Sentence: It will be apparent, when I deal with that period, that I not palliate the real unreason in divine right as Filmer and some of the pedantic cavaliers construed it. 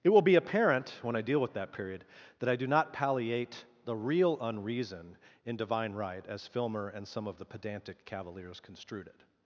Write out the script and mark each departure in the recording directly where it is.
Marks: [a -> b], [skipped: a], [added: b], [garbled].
It will be apparent, when I deal with that period, that I [added: do] not palliate the real unreason in divine right as Filmer and some of the pedantic cavaliers construed it.